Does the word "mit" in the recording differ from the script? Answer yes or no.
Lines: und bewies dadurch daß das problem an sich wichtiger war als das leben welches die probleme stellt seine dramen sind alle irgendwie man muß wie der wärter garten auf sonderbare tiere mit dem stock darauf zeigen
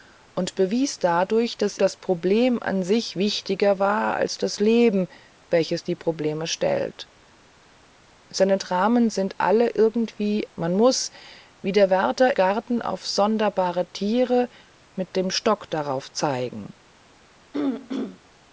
no